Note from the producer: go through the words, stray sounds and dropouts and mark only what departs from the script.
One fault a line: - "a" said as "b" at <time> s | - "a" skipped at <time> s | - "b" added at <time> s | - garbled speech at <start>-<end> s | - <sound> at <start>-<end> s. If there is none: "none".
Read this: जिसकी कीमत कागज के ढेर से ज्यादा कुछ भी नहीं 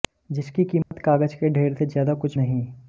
- dropout at 0.8-0.9 s
- "भी" skipped at 2.4 s